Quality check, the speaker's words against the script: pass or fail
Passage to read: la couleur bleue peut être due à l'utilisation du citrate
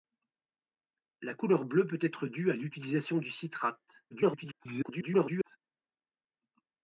fail